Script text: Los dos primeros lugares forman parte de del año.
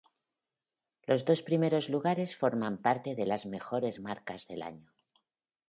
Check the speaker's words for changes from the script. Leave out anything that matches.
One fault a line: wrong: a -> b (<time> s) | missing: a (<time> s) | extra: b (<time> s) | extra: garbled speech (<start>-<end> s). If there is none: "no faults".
extra: las mejores marcas (3.3 s)